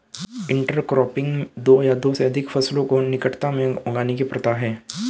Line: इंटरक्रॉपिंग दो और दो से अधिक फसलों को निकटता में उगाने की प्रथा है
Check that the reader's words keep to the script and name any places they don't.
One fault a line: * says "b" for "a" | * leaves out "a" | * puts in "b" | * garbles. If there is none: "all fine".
* says "या" for "और"